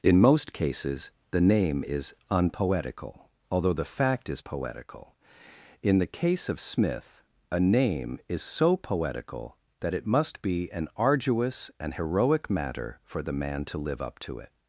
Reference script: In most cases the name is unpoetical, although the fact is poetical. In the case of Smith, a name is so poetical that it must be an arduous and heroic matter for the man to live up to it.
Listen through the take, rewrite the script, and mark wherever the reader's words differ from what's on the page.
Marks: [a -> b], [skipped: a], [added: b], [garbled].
In most cases the name is unpoetical, although the fact is poetical. In the case of Smith, a name is so poetical that it must be an arduous and heroic matter for the man to live up to it.